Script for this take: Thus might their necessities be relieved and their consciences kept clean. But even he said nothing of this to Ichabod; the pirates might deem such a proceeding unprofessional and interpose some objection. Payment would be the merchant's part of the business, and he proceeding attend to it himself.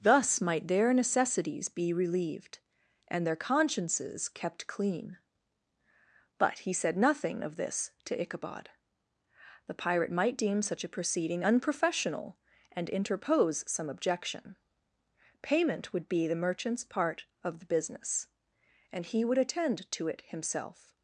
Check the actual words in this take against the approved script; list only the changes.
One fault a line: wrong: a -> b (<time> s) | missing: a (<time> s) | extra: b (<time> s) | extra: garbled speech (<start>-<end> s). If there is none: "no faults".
missing: even (6.6 s)
wrong: pirates -> pirate (9.8 s)
wrong: proceeding -> would (19.3 s)